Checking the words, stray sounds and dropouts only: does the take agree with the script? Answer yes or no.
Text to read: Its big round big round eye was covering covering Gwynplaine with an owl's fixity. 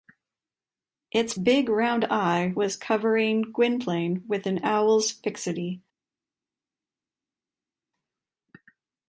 no